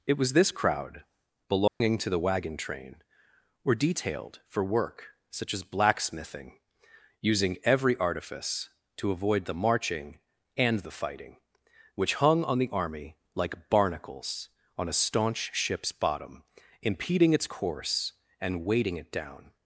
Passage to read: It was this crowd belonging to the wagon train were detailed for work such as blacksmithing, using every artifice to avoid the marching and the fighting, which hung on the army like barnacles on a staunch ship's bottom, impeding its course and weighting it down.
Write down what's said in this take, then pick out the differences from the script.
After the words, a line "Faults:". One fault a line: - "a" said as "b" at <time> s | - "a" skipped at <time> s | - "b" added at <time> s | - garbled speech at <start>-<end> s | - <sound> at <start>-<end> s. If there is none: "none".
It was this crowd belonging to the wagon train were detailed for work such as blacksmithing, using every artifice to avoid the marching and the fighting, which hung on the army like barnacles on a staunch ship's bottom, impeding its course and weighting it down.
Faults:
- dropout at 1.7-1.8 s